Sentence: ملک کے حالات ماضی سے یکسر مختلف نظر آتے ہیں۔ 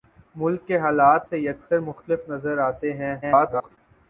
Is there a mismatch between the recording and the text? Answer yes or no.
yes